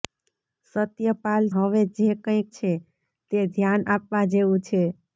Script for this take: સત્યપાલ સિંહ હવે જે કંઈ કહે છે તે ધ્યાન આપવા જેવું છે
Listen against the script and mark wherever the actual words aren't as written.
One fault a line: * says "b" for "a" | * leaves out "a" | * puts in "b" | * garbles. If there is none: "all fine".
* leaves out "સિંહ"
* leaves out "કહે"